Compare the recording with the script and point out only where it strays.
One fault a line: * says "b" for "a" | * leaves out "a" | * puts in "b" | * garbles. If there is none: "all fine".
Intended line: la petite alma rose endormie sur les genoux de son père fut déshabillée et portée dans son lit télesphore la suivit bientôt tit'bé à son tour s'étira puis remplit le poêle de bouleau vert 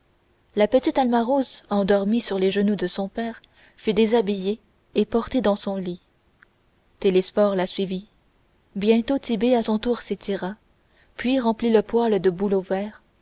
all fine